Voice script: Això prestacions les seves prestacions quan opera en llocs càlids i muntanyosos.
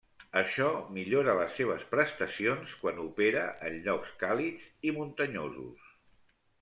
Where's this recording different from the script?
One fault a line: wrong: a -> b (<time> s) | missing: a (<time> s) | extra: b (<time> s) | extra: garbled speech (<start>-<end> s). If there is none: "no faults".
wrong: prestacions -> millora (0.9 s)